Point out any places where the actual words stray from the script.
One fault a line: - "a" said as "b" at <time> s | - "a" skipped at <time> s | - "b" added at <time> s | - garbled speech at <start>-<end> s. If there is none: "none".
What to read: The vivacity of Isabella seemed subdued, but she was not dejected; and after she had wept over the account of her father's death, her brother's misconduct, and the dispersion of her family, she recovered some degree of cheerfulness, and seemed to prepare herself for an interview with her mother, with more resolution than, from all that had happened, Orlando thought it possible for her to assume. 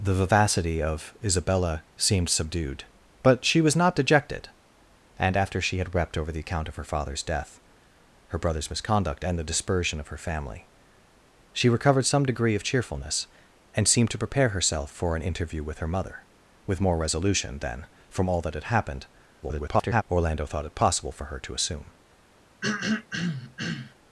- garbled speech at 19.4-20.0 s